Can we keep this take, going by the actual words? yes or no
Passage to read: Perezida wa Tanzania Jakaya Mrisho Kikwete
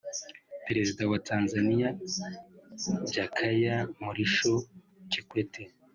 yes